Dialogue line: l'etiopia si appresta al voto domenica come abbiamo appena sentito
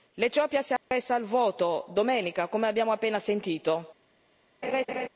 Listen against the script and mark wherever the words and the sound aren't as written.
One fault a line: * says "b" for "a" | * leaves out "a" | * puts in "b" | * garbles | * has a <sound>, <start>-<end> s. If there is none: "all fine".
* has a dropout, 0.8-0.9 s
* has a laugh, 4.6-5.1 s